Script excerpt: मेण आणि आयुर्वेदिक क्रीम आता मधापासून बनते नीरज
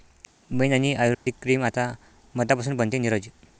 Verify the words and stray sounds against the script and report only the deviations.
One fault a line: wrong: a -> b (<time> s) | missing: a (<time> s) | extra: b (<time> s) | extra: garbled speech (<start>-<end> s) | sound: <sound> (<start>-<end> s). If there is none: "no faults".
sound: dropout (1.1-1.3 s)